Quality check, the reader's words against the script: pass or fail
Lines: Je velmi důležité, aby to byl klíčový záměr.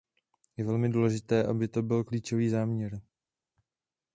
pass